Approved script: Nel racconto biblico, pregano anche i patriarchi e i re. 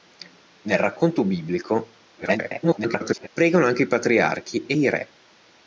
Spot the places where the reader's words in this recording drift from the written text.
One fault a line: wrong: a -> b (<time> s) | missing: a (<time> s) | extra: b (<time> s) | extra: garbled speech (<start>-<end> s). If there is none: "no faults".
extra: garbled speech (2.2-3.3 s)